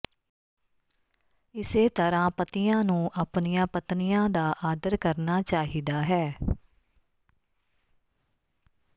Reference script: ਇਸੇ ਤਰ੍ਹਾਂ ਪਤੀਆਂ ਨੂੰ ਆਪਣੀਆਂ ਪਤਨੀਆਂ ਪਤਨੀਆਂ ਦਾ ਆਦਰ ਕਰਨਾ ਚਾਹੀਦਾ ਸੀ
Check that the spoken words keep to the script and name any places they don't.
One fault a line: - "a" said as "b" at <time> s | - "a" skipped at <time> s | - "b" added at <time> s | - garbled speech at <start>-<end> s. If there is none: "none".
- "ਪਤਨੀਆਂ" skipped at 4.3 s
- "ਸੀ" said as "ਹੈ" at 6.0 s